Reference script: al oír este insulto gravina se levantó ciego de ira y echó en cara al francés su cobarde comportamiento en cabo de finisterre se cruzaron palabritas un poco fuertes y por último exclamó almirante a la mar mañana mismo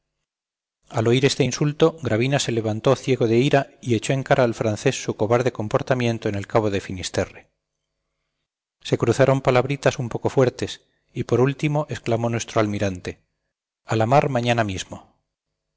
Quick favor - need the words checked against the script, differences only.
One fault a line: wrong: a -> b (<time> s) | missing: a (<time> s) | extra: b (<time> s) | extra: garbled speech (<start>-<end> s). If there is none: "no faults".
extra: el (6.4 s)
extra: nuestro (12.3 s)